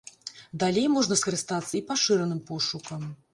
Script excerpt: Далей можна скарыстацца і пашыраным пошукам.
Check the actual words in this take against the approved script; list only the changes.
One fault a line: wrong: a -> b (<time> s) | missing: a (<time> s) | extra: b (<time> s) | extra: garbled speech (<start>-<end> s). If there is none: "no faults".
no faults